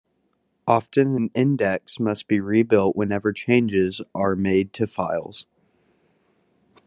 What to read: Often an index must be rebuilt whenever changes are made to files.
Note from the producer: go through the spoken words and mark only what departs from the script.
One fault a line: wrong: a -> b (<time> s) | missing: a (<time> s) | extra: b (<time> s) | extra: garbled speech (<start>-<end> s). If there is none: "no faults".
no faults